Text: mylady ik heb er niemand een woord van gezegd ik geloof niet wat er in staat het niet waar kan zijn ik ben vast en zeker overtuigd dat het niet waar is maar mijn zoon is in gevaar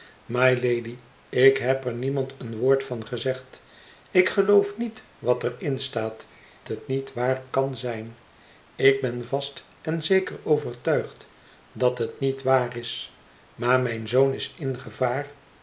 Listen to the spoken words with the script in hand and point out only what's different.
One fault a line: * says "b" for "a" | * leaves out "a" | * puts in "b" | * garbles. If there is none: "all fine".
all fine